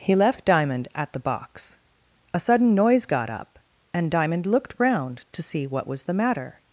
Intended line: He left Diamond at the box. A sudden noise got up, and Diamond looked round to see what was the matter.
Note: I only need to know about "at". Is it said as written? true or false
true